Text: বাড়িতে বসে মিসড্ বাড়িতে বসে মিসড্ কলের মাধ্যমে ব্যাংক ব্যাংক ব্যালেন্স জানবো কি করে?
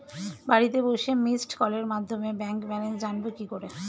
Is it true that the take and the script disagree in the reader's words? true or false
true